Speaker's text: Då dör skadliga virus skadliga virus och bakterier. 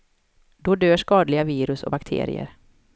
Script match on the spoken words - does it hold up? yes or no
no